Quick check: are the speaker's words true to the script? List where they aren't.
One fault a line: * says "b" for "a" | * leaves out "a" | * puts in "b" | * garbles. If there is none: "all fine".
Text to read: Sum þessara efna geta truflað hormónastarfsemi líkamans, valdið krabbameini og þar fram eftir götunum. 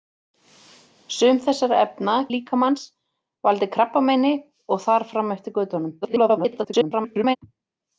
* leaves out "geta truflað hormónastarfsemi"
* garbles